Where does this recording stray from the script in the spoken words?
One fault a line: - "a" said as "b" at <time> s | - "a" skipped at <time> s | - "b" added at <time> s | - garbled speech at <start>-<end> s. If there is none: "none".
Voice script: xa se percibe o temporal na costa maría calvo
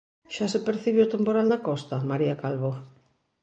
none